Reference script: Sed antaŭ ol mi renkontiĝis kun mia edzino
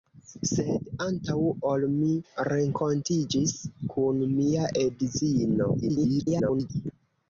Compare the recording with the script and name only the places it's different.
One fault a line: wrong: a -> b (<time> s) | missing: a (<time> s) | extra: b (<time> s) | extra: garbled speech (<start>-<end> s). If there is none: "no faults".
extra: garbled speech (5.8-6.7 s)